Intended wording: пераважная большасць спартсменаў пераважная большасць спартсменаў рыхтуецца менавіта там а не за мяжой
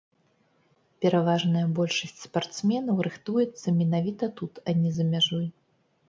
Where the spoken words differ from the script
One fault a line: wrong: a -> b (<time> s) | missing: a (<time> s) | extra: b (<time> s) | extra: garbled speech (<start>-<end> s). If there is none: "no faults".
missing: пераважная большасць спартсменаў (3.0 s)
wrong: там -> тут (4.4 s)